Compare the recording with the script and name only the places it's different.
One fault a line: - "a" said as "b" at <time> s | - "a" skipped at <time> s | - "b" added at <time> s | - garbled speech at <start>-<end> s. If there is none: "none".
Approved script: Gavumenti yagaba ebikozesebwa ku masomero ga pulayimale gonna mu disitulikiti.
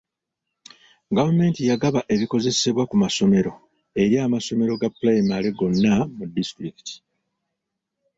- "eri amasomero" added at 4.0 s